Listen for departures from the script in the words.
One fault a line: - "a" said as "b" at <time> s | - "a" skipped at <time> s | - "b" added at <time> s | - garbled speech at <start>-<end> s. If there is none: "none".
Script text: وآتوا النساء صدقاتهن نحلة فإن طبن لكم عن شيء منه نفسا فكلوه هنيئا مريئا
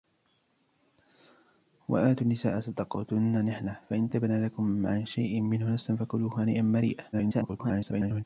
- garbled speech at 7.1-8.2 s